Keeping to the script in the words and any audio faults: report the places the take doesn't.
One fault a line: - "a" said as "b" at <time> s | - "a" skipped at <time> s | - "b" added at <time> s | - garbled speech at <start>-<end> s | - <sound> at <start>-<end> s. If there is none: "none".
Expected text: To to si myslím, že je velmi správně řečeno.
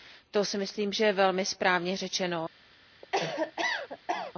- "to" skipped at 0.5 s
- cough at 3.0-4.3 s